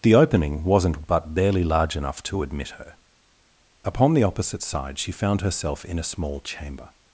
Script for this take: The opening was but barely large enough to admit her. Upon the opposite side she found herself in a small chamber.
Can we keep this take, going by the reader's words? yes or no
no